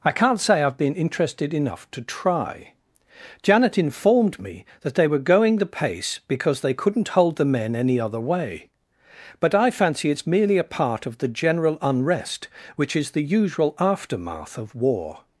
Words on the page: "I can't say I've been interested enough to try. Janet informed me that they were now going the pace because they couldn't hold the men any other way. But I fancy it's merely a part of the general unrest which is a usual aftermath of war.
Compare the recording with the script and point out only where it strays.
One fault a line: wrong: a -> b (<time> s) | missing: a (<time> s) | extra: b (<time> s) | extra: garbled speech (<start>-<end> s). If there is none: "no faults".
missing: now (5.2 s)
wrong: a -> the (13.1 s)